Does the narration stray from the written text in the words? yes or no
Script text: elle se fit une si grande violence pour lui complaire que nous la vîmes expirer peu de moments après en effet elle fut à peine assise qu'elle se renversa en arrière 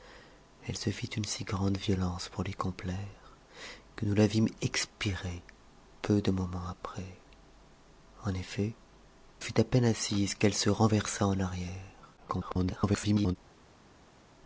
yes